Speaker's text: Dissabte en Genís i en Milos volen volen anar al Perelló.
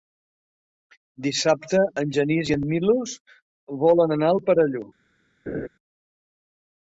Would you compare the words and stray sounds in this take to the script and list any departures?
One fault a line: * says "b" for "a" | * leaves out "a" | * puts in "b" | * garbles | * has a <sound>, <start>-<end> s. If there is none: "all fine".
* leaves out "volen"
* has a laugh, 5.5-5.7 s